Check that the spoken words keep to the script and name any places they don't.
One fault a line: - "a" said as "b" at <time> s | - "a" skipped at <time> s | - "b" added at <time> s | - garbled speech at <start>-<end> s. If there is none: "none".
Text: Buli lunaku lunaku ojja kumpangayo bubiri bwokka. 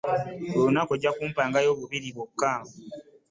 - "lunaku" skipped at 0.9 s